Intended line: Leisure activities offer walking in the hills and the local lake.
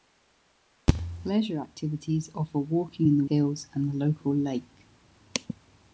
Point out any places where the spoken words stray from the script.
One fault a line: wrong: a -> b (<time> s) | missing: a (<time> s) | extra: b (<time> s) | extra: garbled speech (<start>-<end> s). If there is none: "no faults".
no faults